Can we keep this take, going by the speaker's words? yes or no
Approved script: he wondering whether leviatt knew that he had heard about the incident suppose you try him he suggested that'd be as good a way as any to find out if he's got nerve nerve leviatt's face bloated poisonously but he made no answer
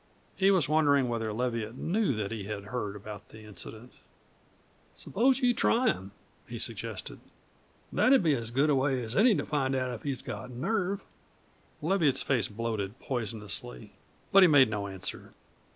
no